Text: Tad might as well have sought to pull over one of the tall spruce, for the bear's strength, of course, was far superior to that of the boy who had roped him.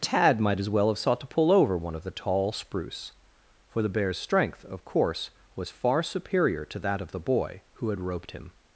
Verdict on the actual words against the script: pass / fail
pass